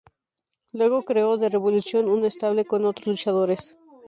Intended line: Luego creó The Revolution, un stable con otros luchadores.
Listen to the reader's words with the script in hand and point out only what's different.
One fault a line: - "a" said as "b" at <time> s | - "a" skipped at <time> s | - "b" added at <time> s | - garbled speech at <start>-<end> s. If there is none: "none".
none